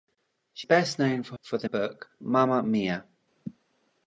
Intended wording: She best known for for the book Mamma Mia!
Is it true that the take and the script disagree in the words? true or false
false